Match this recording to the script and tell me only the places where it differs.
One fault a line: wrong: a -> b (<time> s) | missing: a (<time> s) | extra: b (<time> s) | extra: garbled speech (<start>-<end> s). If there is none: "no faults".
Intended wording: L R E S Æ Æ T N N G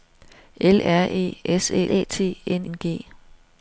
no faults